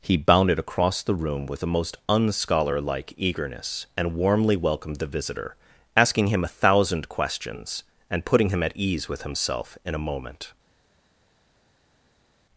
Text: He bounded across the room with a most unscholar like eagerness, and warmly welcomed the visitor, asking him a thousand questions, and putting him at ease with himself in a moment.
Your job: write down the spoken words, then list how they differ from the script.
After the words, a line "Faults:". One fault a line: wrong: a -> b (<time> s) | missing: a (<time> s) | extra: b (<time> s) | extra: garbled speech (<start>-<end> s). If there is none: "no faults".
He bounded across the room with a most unscholar like eagerness, and warmly welcomed the visitor, asking him a thousand questions, and putting him at ease with himself in a moment.
Faults:
no faults